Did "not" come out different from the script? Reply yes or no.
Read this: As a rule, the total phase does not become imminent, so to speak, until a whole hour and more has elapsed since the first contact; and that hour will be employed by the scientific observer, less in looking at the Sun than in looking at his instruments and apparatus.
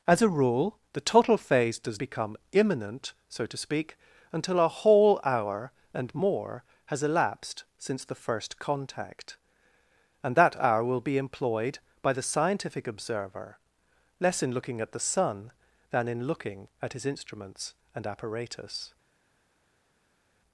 yes